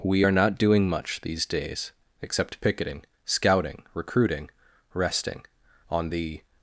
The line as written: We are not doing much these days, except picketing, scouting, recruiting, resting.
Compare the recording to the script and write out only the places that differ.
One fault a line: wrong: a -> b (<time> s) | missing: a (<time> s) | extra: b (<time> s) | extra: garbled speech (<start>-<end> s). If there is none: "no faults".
extra: On the (5.9 s)